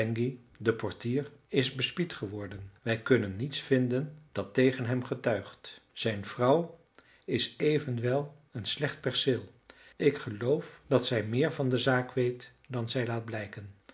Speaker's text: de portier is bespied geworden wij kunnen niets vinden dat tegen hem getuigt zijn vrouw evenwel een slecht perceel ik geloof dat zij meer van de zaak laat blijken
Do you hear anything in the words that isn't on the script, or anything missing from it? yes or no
yes